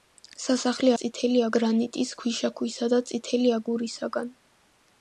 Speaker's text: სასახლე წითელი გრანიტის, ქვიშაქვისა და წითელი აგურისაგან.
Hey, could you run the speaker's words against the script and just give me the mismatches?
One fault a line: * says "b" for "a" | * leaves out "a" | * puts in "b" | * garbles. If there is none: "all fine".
all fine